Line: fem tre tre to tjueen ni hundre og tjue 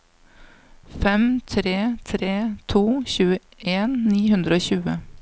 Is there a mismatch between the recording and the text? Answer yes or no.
no